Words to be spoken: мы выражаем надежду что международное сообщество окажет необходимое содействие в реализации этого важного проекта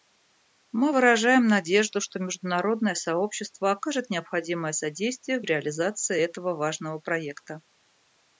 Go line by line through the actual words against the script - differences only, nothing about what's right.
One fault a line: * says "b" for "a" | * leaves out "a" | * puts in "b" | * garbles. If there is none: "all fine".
all fine